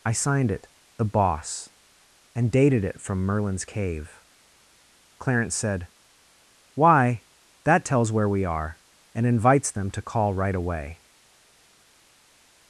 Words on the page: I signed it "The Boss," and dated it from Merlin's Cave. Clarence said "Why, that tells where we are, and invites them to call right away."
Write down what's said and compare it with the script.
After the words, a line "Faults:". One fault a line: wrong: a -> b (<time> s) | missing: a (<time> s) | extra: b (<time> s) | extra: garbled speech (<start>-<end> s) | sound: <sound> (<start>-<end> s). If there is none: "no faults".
I signed it "The Boss," and dated it from Merlin's Cave. Clarence said "Why, that tells where we are, and invites them to call right away."
Faults:
no faults